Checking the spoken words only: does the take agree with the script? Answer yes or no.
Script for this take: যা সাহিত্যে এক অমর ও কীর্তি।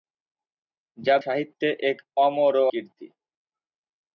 yes